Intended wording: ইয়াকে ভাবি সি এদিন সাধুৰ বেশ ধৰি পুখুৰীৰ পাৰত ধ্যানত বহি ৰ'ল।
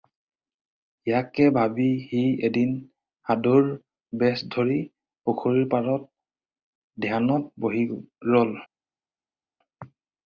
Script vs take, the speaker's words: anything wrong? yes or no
no